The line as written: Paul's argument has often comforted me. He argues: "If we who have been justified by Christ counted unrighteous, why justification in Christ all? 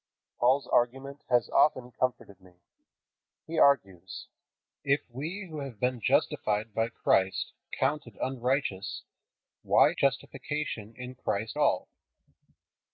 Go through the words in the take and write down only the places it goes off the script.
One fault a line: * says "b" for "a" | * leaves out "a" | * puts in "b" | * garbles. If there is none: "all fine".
all fine